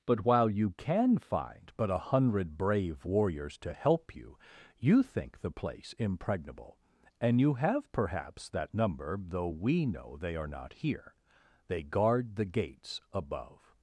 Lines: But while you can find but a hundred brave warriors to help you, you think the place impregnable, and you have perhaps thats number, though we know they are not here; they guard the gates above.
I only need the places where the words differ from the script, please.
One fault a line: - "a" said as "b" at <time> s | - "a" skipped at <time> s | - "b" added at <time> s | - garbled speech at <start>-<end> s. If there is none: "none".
- "thats" said as "that" at 8.5 s